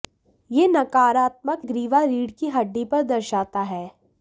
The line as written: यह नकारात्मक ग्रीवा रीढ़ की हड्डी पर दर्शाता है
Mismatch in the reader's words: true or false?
false